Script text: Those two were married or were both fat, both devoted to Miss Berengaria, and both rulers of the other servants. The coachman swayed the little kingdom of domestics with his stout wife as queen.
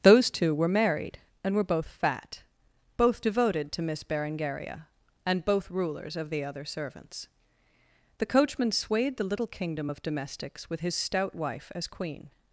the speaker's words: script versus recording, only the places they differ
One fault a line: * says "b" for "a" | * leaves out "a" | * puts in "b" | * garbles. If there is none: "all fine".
* says "and" for "or"